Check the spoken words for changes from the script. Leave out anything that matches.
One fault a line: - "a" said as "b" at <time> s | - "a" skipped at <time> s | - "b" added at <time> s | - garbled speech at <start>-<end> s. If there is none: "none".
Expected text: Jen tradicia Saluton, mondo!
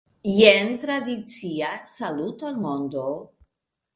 none